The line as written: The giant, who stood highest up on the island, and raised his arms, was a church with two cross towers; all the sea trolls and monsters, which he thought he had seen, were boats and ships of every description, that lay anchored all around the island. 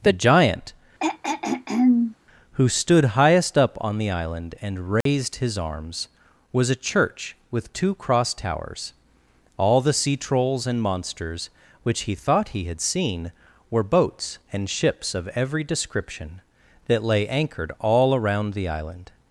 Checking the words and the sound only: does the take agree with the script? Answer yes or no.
no